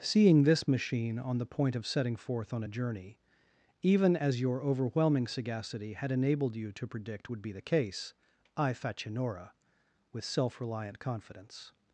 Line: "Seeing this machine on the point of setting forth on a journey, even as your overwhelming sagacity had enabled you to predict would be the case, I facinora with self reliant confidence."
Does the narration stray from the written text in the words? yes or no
no